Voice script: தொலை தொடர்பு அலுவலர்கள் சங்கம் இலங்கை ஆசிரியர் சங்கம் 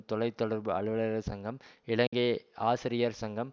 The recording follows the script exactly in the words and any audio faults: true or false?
false